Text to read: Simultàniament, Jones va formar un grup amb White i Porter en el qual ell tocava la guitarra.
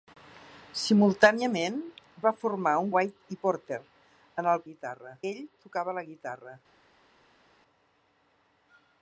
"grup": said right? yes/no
no